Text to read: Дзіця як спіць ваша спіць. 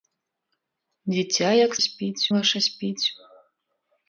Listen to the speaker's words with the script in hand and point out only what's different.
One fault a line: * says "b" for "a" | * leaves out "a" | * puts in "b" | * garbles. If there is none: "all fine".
all fine